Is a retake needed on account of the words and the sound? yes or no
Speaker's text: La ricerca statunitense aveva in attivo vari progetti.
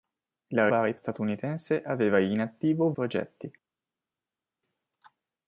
yes